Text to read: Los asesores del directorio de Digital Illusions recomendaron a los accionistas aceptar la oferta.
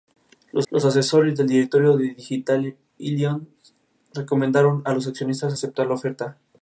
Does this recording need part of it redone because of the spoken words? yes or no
yes